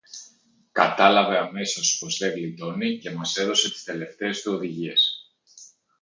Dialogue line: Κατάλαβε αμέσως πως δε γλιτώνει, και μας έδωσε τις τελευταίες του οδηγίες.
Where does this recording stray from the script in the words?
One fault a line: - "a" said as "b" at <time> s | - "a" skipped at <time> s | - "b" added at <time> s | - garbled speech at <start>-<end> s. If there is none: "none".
none